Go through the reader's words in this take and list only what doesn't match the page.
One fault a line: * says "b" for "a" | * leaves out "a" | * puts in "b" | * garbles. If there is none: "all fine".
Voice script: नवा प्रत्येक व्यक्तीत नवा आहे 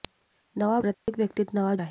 all fine